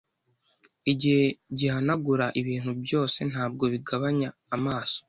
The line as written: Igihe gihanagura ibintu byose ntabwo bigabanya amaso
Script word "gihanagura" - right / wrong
right